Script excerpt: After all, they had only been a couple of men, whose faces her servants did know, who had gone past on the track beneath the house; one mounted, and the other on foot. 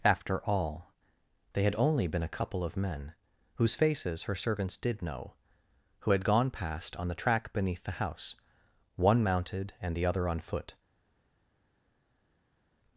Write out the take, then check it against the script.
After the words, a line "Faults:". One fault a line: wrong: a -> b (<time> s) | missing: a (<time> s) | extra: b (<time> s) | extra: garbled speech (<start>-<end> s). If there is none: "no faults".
After all, they had only been a couple of men, whose faces her servants did know, who had gone past on the track beneath the house; one mounted, and the other on foot.
Faults:
no faults